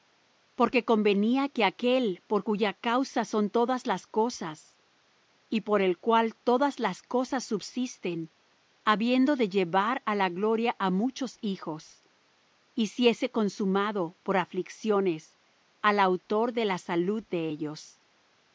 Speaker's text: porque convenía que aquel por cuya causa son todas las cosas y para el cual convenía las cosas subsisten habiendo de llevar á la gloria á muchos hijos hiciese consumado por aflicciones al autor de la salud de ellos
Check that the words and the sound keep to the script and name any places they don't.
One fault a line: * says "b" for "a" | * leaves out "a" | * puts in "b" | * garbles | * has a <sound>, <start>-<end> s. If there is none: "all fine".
* says "por" for "para"
* says "todas" for "convenía"